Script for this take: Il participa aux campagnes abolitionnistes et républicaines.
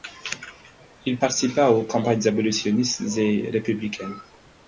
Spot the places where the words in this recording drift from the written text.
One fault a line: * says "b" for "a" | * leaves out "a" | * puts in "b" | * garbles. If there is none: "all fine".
all fine